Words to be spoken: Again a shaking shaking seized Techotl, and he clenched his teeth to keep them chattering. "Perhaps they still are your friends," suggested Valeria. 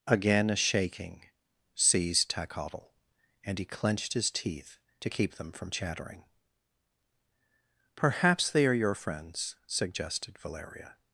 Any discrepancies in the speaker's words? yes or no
yes